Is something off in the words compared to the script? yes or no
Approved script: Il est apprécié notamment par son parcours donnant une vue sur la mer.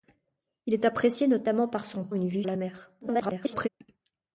yes